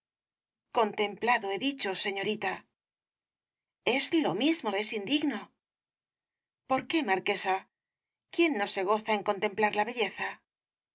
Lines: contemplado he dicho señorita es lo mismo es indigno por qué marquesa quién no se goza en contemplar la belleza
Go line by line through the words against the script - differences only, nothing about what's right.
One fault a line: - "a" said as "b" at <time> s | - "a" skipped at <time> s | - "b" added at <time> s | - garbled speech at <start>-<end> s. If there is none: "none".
none